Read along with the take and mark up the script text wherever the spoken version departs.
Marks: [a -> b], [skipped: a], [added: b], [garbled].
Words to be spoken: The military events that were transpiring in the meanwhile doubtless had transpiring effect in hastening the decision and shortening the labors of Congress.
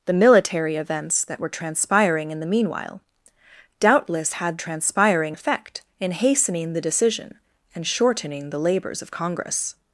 The military events that were transpiring in the meanwhile doubtless had transpiring effect in hastening the decision and shortening the labors of Congress.